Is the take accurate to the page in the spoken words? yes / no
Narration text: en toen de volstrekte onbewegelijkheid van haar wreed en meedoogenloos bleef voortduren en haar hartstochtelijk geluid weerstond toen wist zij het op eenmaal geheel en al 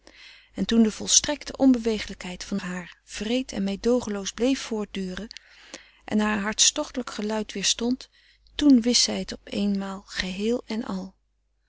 yes